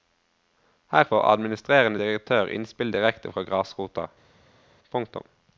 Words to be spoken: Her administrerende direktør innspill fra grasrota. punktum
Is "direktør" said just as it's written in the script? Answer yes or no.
yes